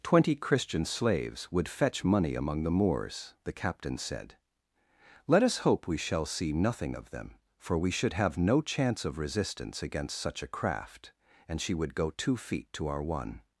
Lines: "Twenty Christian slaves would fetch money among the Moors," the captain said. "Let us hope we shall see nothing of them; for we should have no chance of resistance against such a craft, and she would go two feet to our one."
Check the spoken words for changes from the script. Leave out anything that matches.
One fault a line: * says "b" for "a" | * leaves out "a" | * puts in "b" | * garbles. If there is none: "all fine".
all fine